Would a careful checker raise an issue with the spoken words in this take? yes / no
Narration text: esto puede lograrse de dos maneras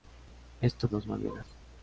yes